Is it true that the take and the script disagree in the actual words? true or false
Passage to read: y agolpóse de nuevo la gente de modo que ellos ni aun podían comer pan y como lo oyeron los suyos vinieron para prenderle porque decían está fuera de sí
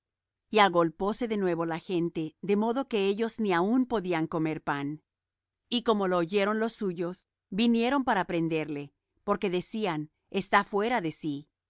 false